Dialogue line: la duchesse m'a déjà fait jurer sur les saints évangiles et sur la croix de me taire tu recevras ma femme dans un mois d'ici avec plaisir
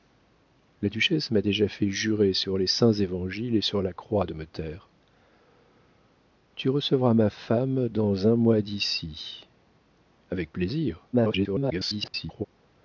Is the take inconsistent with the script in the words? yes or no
yes